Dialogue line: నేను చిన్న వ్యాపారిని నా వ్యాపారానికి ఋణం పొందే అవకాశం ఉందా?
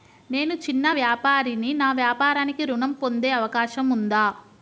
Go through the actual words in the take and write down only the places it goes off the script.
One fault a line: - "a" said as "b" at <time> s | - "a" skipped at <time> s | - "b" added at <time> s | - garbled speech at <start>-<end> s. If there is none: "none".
none